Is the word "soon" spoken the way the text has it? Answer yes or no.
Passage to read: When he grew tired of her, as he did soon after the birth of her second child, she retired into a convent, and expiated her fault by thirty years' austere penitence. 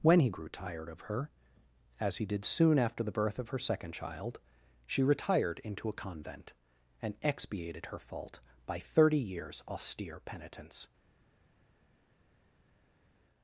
yes